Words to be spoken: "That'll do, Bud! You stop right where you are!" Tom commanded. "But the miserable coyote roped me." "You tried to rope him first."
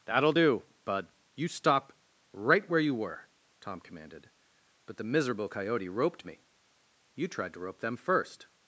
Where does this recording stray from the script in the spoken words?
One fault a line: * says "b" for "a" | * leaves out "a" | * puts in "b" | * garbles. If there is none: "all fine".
* says "were" for "are"
* says "them" for "him"